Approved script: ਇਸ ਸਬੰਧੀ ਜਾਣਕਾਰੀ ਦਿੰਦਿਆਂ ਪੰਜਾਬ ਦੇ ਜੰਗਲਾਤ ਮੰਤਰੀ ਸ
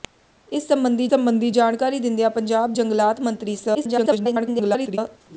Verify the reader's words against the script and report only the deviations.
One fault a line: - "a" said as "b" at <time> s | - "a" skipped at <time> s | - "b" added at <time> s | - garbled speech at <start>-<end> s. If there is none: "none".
- "ਸਬੰਧੀ" added at 1.1 s
- "ਦੇ" skipped at 2.7 s
- garbled speech at 3.7-5.0 s